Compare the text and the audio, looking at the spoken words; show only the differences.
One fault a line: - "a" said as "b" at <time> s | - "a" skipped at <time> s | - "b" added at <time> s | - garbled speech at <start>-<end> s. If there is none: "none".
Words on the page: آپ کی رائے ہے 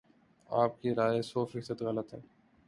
- "سو فیصد غلط" added at 1.2 s